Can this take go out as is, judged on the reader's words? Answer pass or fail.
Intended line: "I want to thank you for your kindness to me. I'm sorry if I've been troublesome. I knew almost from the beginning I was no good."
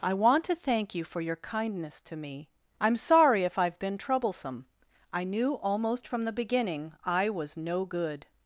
pass